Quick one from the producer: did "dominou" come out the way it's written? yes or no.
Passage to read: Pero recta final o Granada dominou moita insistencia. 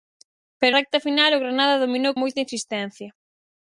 yes